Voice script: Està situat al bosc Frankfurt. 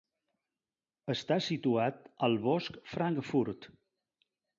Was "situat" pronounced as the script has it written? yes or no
yes